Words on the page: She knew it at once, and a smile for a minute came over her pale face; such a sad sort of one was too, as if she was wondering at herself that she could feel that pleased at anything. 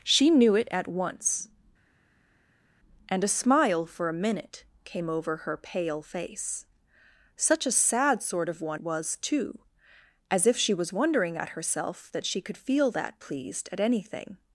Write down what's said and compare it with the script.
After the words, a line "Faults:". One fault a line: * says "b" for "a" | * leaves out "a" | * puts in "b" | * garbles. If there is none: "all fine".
She knew it at once, and a smile for a minute came over her pale face; such a sad sort of one was too, as if she was wondering at herself that she could feel that pleased at anything.
Faults:
all fine